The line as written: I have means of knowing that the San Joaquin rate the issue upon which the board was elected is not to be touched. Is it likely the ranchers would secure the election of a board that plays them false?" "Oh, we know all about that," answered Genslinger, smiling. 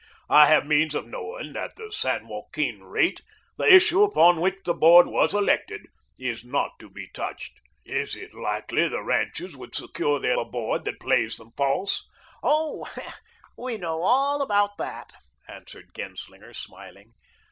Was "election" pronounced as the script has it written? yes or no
no